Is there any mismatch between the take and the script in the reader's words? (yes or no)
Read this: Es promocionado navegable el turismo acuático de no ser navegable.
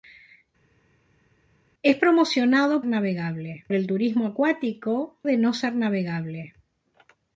no